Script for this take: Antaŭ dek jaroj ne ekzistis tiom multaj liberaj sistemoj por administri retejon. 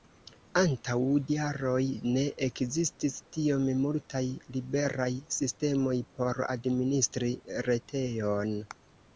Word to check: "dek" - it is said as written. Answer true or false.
false